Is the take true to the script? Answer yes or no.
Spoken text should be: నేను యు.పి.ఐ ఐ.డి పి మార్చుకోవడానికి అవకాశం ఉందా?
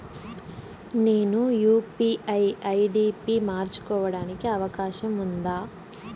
yes